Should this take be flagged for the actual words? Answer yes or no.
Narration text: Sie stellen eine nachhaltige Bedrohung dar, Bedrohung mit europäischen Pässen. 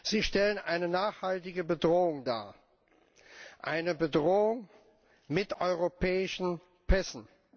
yes